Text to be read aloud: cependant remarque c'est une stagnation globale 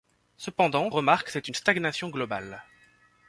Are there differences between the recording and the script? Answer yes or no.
no